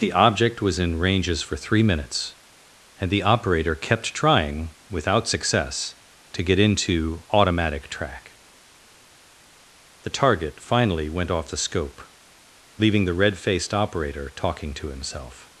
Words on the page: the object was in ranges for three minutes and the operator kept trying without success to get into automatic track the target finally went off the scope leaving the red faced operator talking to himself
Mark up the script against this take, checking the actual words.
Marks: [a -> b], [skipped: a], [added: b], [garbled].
the object was in ranges for three minutes and the operator kept trying without success to get into automatic track the target finally went off the scope leaving the red faced operator talking to himself